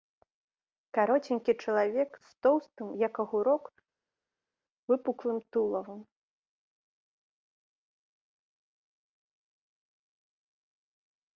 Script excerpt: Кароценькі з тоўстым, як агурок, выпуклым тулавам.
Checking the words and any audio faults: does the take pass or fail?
fail